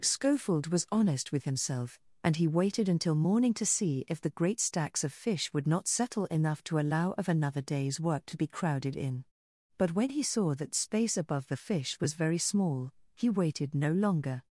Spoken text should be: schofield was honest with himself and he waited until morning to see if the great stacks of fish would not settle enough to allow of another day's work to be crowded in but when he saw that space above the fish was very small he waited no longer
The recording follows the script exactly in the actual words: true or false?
true